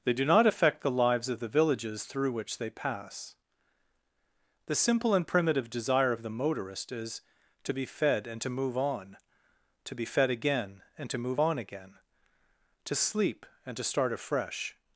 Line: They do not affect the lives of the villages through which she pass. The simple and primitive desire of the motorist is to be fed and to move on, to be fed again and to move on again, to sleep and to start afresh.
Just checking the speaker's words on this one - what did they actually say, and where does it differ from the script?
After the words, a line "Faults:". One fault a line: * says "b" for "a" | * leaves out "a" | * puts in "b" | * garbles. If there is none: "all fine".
They do not affect the lives of the villages through which they pass. The simple and primitive desire of the motorist is to be fed and to move on, to be fed again and to move on again, to sleep and to start afresh.
Faults:
* says "they" for "she"